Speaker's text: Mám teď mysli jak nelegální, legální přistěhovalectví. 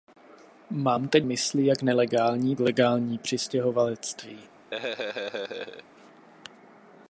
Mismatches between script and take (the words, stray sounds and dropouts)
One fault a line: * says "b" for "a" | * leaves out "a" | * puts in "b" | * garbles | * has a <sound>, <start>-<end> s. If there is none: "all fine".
* has a laugh, 4.7-5.8 s